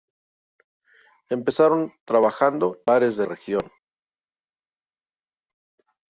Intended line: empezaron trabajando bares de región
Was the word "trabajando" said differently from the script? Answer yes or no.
no